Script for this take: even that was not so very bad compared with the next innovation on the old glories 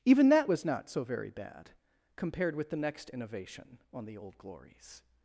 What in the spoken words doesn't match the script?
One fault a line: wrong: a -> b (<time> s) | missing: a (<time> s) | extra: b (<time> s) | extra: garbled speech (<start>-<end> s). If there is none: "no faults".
no faults